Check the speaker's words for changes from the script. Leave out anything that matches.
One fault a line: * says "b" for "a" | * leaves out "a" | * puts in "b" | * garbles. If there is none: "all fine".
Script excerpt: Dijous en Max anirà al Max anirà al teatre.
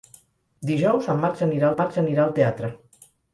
all fine